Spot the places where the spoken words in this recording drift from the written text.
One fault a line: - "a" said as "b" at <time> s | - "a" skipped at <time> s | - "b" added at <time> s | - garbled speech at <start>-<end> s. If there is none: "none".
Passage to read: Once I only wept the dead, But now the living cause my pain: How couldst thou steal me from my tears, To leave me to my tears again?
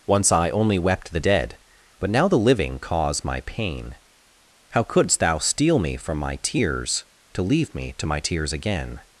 none